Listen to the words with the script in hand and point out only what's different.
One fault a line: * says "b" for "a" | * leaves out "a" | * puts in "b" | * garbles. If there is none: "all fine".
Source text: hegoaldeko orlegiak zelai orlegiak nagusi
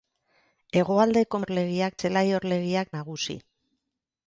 all fine